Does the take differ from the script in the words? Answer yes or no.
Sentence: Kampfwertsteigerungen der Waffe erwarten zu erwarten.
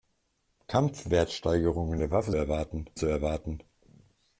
no